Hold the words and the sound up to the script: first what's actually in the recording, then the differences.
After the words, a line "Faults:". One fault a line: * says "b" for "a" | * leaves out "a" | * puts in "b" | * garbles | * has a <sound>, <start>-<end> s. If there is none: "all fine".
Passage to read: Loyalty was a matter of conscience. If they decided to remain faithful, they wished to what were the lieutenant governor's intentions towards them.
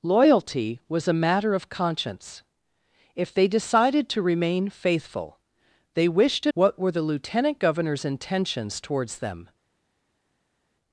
Loyalty was a matter of conscience. If they decided to remain faithful, they wished to what were the lieutenant governor's intentions towards them.
Faults:
all fine